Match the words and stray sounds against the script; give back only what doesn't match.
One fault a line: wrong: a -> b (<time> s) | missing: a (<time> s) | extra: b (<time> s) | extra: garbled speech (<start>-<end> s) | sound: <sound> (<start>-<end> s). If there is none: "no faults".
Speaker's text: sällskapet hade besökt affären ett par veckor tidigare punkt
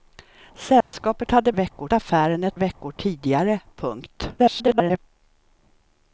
sound: dropout (0.8-0.9 s)
wrong: besökt -> veckor (1.5 s)
missing: par (2.6 s)
extra: garbled speech (4.4-5.0 s)